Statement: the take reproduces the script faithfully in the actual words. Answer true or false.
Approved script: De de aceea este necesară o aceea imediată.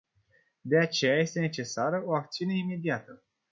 false